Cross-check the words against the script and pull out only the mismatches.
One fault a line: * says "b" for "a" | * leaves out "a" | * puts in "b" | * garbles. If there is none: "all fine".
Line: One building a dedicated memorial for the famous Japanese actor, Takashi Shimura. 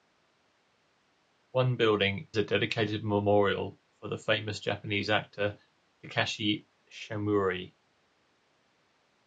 all fine